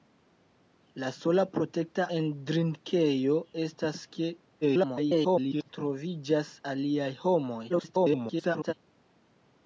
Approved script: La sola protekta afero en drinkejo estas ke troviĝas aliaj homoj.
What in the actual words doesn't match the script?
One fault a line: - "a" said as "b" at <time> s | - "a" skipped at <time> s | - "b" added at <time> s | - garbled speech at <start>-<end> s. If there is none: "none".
- "afero" skipped at 2.1 s
- garbled speech at 4.6-5.7 s
- garbled speech at 7.7-8.7 s